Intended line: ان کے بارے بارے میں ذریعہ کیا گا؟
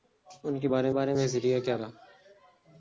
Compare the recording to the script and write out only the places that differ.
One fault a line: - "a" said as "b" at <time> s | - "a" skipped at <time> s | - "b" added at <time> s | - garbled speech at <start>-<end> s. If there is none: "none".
none